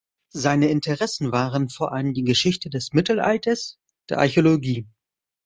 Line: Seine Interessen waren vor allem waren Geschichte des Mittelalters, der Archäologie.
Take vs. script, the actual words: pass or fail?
fail